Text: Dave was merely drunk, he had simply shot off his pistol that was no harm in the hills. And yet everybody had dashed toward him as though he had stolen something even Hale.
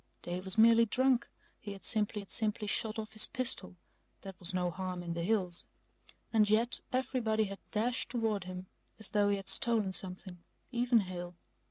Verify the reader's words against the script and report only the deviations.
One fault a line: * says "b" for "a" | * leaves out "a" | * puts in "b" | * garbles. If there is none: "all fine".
* puts in "had simply"